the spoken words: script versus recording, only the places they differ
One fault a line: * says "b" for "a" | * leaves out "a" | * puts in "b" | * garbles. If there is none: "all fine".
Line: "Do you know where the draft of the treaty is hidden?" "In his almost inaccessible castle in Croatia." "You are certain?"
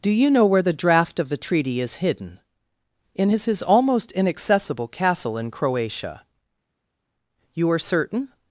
* puts in "his"